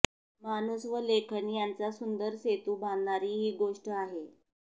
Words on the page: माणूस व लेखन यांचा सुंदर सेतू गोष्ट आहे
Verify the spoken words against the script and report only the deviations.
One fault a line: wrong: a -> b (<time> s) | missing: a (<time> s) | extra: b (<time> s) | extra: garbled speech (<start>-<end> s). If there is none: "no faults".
extra: बांधणारी ही (2.8 s)